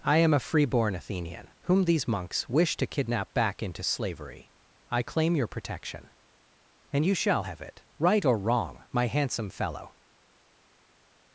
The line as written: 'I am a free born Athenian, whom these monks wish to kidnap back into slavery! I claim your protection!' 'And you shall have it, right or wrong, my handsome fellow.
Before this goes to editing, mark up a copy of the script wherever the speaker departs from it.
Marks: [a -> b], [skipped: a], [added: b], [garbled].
'I am a free born Athenian, whom these monks wish to kidnap back into slavery! I claim your protection!' 'And you shall have it, right or wrong, my handsome fellow.